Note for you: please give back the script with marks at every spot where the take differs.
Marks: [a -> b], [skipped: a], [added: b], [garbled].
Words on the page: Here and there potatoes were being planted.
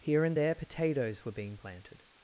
Here and there potatoes were being planted.